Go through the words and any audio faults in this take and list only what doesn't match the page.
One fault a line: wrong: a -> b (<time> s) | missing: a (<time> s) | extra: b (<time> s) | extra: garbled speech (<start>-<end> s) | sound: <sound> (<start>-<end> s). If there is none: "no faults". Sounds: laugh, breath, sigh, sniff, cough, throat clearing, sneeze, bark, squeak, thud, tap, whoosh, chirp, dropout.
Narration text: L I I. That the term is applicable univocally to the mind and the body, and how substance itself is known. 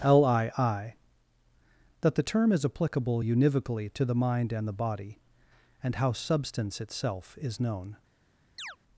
sound: chirp (8.6-8.8 s)